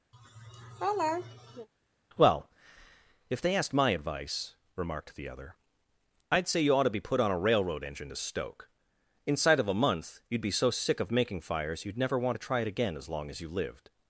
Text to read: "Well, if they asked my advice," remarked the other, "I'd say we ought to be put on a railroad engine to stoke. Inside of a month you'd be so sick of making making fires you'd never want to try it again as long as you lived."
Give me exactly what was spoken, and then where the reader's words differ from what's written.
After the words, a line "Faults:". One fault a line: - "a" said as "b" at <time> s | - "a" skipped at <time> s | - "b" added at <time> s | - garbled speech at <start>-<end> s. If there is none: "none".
"Well, if they asked my advice," remarked the other, "I'd say you ought to be put on a railroad engine to stoke. Inside of a month you'd be so sick of making fires you'd never want to try it again as long as you lived."
Faults:
- "we" said as "you" at 6.6 s
- "making" skipped at 11.4 s